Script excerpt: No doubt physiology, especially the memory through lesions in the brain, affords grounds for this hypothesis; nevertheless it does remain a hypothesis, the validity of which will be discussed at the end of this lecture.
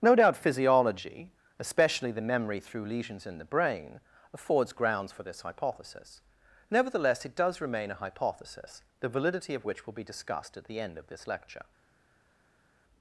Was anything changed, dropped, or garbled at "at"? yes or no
no